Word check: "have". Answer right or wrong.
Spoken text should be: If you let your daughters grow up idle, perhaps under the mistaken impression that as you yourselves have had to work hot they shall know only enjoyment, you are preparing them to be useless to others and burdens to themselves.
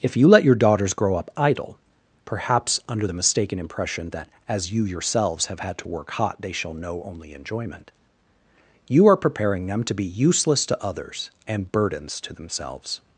right